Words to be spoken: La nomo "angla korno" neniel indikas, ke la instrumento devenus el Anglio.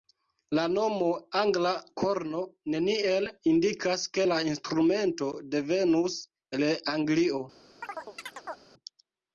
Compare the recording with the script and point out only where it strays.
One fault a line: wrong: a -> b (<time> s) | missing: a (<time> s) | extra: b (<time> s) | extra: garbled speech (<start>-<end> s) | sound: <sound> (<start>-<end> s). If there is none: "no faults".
sound: chirp (7.8-8.6 s)